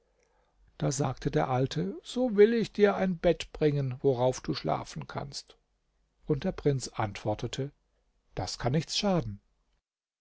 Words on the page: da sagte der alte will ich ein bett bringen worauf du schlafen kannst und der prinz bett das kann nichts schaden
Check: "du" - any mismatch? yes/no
no